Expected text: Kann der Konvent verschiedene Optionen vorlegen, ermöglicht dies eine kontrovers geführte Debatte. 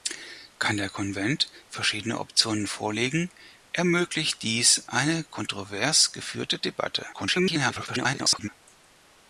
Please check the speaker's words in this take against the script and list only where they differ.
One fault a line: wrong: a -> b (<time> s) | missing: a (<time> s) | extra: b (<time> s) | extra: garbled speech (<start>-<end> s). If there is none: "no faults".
extra: garbled speech (7.1-8.5 s)